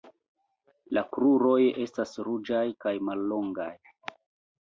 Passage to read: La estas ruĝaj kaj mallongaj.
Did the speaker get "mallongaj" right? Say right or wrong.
right